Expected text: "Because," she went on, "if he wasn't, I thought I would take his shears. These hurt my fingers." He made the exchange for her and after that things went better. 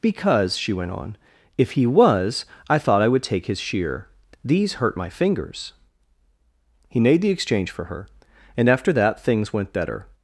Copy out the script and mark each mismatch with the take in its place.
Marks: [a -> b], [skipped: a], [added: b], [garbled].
"Because," she went on, "if he [wasn't, -> was] I thought I would take his [shears. -> shear] These hurt my fingers." He made the exchange for her and after that things went better.